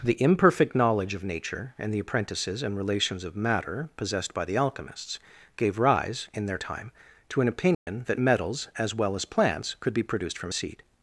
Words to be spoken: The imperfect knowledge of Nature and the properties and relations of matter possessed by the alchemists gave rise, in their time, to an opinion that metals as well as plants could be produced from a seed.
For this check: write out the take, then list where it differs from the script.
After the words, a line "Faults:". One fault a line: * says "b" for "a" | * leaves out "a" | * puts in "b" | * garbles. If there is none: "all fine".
The imperfect knowledge of Nature and the apprentices and relations of matter possessed by the alchemists gave rise, in their time, to an opinion that metals as well as plants could be produced from a seed.
Faults:
* says "apprentices" for "properties"